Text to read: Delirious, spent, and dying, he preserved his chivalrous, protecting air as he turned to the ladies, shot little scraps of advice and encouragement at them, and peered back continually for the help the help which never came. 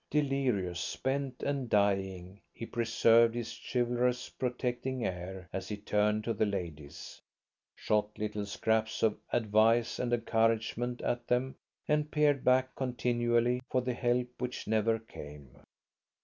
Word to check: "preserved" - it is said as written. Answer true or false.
true